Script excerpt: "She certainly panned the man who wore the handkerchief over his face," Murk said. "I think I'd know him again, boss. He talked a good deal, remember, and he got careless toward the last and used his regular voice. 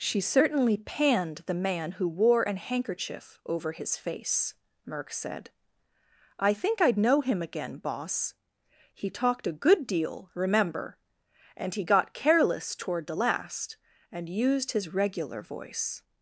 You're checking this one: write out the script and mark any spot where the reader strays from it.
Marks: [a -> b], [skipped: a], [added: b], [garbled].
"She certainly panned the man who wore [the -> an] handkerchief over his face," Murk said. "I think I'd know him again, boss. He talked a good deal, remember, and he got careless toward the last and used his regular voice.